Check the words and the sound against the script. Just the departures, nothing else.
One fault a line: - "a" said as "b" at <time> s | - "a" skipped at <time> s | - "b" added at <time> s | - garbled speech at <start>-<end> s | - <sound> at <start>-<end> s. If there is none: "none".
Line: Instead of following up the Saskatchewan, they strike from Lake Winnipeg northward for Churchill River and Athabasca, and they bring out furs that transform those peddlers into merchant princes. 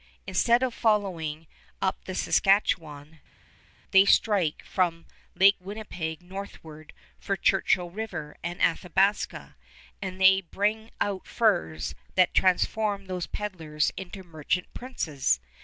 none